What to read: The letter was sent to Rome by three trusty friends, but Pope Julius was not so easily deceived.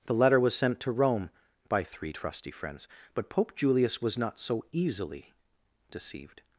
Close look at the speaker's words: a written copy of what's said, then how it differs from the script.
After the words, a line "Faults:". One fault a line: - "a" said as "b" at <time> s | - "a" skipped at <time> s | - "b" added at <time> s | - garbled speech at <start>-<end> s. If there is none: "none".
The letter was sent to Rome by three trusty friends, but Pope Julius was not so easily deceived.
Faults:
none